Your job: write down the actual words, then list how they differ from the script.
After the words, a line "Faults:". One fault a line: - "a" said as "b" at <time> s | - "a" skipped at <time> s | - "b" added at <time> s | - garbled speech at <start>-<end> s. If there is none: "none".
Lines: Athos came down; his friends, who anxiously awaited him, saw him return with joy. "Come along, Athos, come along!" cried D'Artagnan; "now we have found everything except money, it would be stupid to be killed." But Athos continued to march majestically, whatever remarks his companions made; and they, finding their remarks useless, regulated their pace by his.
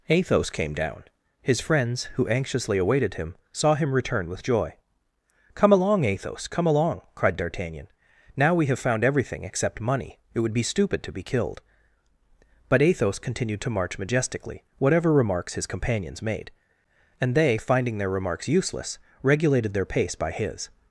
Athos came down; his friends, who anxiously awaited him, saw him return with joy. "Come along, Athos, come along!" cried D'Artagnan; "now we have found everything except money, it would be stupid to be killed." But Athos continued to march majestically, whatever remarks his companions made; and they, finding their remarks useless, regulated their pace by his.
Faults:
none